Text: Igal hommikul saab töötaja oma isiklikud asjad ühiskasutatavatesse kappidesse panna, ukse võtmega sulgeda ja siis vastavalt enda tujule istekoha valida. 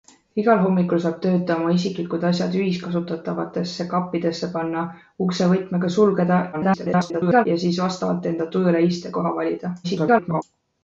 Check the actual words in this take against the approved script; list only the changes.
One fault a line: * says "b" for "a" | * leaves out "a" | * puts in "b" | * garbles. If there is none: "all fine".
* garbles
* garbles